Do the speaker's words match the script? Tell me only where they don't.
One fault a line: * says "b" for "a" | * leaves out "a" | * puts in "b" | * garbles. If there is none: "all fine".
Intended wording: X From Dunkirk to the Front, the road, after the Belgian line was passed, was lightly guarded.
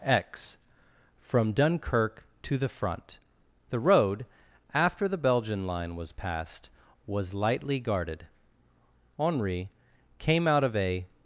* puts in "Henri came out of a"